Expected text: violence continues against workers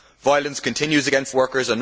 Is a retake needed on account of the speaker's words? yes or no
no